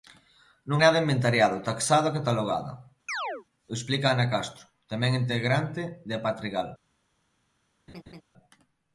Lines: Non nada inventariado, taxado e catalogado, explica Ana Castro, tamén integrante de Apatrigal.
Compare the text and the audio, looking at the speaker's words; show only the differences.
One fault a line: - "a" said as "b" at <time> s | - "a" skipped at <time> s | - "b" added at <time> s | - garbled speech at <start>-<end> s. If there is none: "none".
none